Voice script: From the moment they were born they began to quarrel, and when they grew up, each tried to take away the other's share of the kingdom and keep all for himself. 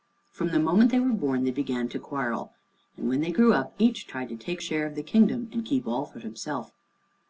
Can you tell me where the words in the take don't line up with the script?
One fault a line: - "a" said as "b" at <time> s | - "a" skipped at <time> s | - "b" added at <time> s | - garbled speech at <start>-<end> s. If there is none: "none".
- "away the other's" skipped at 4.6 s